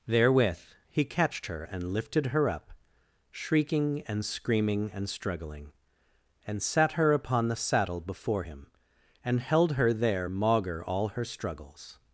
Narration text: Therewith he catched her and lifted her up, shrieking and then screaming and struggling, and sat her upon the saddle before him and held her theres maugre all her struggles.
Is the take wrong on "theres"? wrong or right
wrong